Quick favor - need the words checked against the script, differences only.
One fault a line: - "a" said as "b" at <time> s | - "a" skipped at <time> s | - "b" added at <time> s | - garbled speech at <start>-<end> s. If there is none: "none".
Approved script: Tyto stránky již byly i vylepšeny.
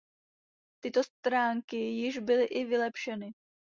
none